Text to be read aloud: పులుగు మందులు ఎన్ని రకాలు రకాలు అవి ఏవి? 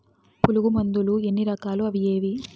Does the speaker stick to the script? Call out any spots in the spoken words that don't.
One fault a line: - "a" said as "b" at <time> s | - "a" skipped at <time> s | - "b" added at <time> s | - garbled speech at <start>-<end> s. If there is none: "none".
- "రకాలు" skipped at 1.8 s